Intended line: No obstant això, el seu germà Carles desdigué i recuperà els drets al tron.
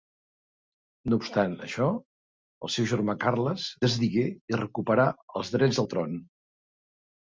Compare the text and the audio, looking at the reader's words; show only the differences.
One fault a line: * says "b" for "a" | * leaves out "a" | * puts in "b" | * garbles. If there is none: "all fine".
all fine